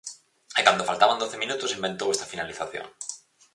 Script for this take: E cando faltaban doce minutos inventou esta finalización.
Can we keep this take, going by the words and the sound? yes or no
yes